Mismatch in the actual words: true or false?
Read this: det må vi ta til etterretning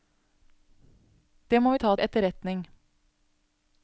true